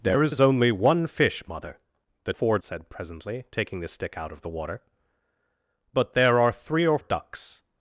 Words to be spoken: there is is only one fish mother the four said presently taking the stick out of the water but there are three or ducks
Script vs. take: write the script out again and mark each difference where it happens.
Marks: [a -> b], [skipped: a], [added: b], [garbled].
there is is only one fish mother the four said presently taking the stick out of the water but there are three or ducks